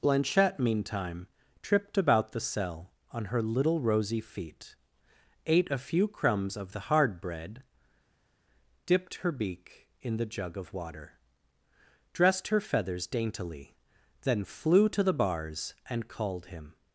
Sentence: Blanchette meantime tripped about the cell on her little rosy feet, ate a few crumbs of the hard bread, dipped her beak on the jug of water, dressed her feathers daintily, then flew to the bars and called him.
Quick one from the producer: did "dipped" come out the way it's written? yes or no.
yes